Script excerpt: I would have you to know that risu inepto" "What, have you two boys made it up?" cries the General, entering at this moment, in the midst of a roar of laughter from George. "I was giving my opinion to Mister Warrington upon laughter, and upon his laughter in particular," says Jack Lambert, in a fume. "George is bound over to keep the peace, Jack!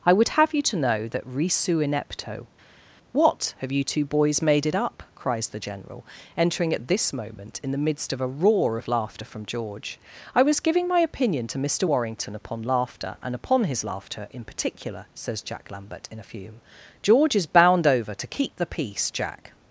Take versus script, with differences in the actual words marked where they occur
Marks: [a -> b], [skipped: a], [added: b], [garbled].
I would have you to know that risu inepto" "What, have you two boys made it up?" cries the General, entering at this moment, in the midst of a roar of laughter from George. "I was giving my opinion to Mister Warrington upon laughter, and upon his laughter in particular," says Jack Lambert, in a fume. "George is bound over to keep the peace, Jack!